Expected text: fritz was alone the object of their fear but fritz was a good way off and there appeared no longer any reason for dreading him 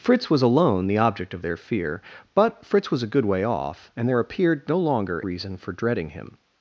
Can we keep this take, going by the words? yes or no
no